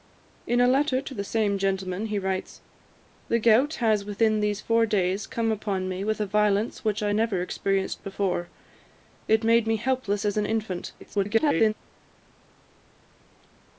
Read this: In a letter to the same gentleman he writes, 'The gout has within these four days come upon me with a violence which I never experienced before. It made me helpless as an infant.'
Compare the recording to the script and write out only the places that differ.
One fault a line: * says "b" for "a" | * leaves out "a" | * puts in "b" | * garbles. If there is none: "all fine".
* garbles